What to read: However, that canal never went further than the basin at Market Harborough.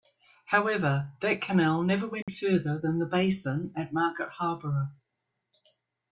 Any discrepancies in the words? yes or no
no